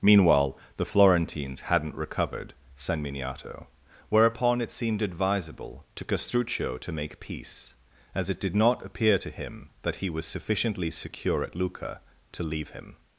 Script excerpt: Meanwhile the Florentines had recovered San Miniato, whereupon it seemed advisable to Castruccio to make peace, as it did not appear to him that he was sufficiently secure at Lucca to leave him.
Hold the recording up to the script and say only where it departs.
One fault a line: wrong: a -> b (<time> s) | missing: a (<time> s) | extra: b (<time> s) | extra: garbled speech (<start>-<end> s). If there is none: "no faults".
wrong: had -> hadn't (1.6 s)